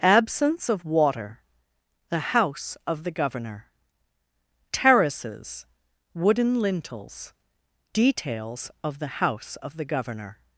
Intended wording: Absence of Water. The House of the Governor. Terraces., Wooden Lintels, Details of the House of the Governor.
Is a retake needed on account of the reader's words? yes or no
no